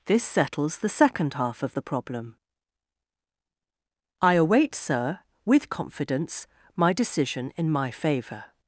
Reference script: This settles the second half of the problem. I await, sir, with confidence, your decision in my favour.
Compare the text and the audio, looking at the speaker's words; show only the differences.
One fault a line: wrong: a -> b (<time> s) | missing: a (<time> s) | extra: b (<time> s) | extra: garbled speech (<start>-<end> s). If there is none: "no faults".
wrong: your -> my (6.8 s)